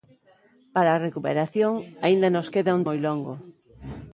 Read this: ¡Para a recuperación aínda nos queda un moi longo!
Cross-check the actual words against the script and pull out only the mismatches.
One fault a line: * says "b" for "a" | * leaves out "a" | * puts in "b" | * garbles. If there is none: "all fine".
all fine